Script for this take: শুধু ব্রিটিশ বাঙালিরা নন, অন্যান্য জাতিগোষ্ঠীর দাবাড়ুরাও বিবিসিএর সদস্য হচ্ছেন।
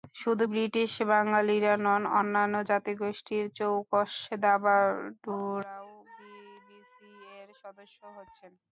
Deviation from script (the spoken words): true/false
true